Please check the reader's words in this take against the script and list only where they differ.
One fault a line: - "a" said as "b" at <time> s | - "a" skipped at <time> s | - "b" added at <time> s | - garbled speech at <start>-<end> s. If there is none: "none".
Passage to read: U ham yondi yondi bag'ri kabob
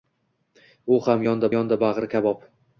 none